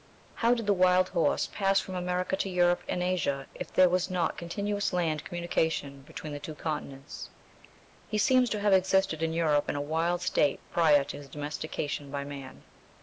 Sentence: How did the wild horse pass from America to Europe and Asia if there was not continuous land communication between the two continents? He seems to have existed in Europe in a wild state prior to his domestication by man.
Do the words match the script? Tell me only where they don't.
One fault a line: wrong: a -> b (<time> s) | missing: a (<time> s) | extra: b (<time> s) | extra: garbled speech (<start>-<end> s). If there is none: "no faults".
no faults